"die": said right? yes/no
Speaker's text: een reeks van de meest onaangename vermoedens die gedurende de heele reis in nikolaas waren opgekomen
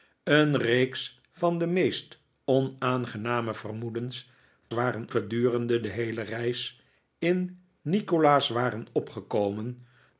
no